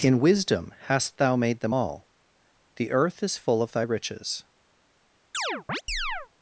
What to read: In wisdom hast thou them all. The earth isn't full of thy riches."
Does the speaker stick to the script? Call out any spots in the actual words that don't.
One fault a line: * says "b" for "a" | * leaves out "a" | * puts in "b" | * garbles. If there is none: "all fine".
* puts in "made"
* says "is" for "isn't"